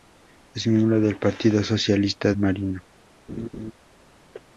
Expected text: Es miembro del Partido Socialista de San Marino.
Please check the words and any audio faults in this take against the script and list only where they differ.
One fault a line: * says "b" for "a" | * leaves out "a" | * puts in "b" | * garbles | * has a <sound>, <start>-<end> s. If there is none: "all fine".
* leaves out "de San"
* has a laugh, 3.3-3.7 s